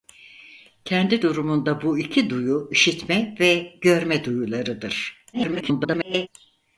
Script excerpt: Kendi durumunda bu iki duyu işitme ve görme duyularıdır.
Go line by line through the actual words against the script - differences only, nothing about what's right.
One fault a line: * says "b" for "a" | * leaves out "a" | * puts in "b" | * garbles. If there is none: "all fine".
* garbles